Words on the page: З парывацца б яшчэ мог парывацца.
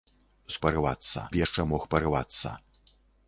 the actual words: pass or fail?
pass